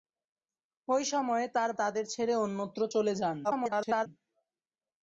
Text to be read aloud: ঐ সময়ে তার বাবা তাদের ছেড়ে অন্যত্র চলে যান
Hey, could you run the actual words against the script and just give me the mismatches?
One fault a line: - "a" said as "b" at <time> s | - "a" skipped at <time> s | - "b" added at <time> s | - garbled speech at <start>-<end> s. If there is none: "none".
- "বাবা" skipped at 1.7 s
- garbled speech at 3.4-4.1 s